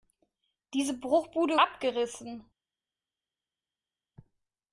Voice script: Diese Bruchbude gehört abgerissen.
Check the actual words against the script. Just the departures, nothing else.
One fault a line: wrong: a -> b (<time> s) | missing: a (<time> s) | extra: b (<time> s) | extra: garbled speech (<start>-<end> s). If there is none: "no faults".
missing: gehört (1.6 s)